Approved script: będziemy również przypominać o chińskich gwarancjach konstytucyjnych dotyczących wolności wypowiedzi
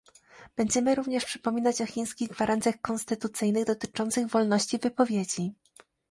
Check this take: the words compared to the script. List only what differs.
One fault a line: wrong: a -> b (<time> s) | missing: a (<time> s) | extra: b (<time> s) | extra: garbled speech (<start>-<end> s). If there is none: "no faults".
no faults